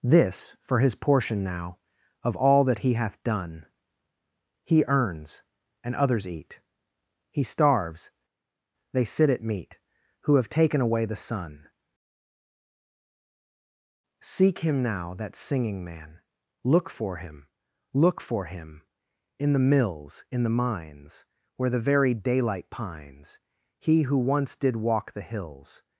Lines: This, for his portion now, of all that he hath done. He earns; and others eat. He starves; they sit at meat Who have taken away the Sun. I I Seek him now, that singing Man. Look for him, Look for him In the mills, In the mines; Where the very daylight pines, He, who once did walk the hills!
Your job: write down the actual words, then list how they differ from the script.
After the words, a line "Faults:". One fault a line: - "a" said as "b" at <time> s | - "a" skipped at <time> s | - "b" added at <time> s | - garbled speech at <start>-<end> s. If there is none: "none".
This, for his portion now, of all that he hath done. He earns; and others eat. He starves; they sit at meat Who have taken away the Sun. Seek him now, that singing Man. Look for him, Look for him In the mills, In the mines; Where the very daylight pines, He, who once did walk the hills!
Faults:
- "I I" skipped at 11.7 s